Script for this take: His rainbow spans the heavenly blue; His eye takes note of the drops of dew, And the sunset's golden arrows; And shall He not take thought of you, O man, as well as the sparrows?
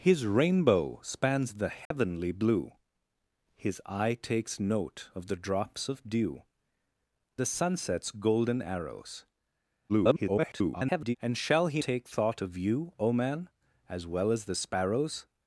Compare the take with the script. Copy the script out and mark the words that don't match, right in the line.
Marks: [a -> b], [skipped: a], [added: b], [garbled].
His rainbow spans the heavenly blue; His eye takes note of the drops of dew, [skipped: And] the sunset's golden arrows; [garbled] And shall He [skipped: not] take thought of you, O man, as well as the sparrows?